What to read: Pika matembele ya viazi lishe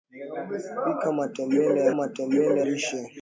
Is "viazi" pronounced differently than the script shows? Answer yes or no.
yes